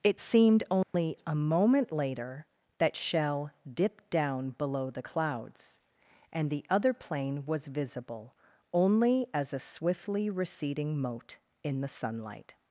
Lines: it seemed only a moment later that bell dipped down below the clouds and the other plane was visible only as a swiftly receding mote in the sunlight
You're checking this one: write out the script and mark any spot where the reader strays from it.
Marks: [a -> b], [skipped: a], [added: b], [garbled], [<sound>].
it seemed only [dropout] a moment later that [bell -> shell] dipped down below the clouds and the other plane was visible only as a swiftly receding mote in the sunlight